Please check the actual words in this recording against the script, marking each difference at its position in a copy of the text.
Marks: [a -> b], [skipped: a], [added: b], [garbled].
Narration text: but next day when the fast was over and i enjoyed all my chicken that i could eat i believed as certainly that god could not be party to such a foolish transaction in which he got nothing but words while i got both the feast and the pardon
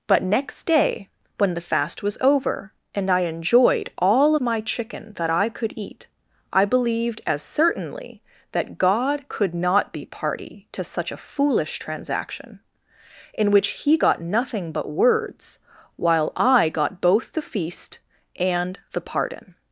but next day when the fast was over and i enjoyed all my chicken that i could eat i believed as certainly that god could not be party to such a foolish transaction in which he got nothing but words while i got both the feast and the pardon